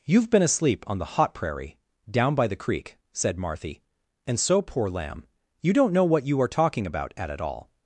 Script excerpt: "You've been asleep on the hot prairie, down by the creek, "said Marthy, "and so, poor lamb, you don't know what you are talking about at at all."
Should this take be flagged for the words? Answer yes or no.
no